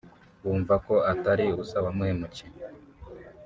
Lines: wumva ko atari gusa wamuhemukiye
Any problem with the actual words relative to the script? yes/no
no